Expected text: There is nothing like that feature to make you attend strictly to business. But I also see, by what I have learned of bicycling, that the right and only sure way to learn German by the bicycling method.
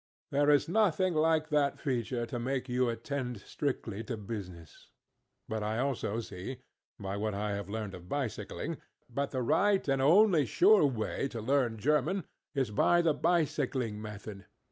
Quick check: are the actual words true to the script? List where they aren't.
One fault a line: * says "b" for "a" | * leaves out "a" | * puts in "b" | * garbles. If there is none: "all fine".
* puts in "is"